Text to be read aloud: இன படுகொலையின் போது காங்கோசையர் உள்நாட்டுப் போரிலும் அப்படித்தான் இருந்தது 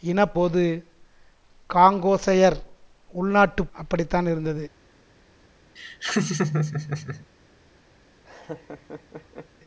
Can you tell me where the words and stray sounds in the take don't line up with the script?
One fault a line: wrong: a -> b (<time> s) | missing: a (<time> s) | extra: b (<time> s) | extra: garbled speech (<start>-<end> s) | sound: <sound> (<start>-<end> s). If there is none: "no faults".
missing: படுகொலையின் (0.2 s)
missing: போரிலும் (3.7 s)
sound: laugh (5.8-7.3 s)
sound: laugh (8.3-9.5 s)